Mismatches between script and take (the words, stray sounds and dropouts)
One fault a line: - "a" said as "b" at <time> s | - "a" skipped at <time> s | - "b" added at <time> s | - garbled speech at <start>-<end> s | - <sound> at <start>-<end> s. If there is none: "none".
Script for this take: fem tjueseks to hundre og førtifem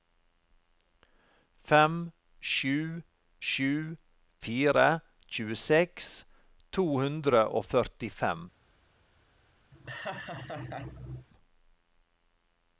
- "sju sju fire" added at 2.5 s
- laugh at 9.7-11.3 s